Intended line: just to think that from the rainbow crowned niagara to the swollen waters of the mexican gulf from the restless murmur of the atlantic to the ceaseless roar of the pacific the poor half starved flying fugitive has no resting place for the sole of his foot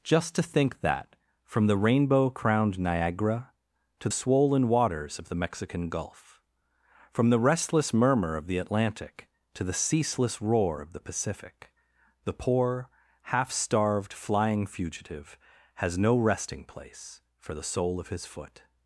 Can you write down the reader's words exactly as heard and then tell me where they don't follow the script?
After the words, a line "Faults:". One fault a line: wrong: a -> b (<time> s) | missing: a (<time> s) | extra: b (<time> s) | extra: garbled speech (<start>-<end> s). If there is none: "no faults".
just to think that from the rainbow crowned niagara to swollen waters of the mexican gulf from the restless murmur of the atlantic to the ceaseless roar of the pacific the poor half starved flying fugitive has no resting place for the sole of his foot
Faults:
missing: the (4.1 s)